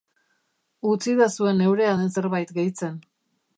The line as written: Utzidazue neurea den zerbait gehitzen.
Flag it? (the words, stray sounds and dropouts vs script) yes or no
no